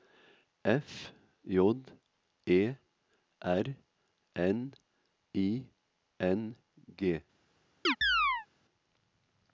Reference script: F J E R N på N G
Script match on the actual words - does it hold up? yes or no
no